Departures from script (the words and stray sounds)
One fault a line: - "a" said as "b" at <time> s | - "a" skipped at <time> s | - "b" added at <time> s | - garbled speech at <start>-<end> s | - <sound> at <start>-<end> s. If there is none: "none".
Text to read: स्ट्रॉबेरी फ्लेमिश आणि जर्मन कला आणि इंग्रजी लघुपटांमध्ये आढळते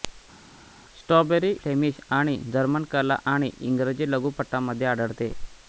none